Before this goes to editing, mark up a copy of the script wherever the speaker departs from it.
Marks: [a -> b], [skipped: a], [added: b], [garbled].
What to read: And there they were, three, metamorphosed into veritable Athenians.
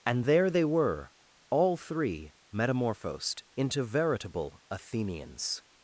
And there they were, [added: all] three, metamorphosed into veritable Athenians.